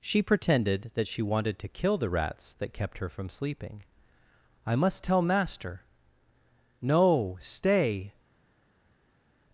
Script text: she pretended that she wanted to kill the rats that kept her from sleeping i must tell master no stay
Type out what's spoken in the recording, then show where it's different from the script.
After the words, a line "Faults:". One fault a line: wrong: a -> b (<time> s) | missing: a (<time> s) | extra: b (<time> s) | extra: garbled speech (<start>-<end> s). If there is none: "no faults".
she pretended that she wanted to kill the rats that kept her from sleeping i must tell master no stay
Faults:
no faults